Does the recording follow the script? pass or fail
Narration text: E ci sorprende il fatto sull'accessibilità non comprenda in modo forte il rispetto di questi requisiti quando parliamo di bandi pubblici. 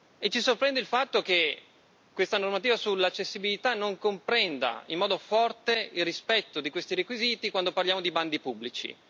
fail